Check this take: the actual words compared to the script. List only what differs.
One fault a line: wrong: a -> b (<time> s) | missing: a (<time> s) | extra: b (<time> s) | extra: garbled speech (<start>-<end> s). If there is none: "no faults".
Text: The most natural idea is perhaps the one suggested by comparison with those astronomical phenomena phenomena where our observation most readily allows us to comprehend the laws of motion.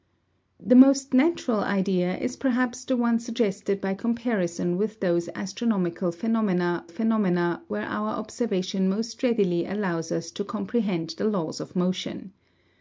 no faults